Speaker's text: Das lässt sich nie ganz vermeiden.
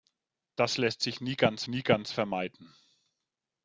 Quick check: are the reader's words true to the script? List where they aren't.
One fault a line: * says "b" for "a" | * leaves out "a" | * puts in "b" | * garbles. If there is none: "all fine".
* puts in "nie ganz"